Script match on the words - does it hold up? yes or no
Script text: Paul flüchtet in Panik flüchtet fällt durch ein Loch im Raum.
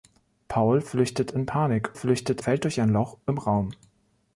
yes